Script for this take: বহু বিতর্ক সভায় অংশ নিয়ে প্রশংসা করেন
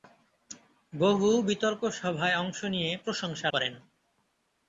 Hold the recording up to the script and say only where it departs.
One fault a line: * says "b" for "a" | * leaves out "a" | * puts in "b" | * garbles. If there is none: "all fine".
all fine